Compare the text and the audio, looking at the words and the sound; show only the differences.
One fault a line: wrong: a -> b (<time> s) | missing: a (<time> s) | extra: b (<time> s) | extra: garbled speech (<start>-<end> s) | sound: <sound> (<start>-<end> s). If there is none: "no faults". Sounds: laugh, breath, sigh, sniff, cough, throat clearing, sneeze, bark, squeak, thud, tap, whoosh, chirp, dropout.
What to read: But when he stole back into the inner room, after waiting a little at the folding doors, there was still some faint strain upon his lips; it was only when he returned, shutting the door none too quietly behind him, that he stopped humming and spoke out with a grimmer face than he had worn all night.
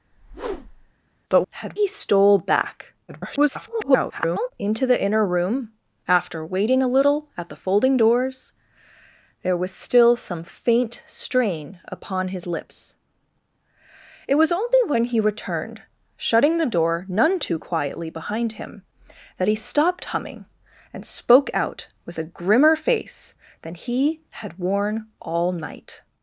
sound: whoosh (0.1-0.9 s)
wrong: when -> had (1.5 s)
extra: garbled speech (3.1-4.5 s)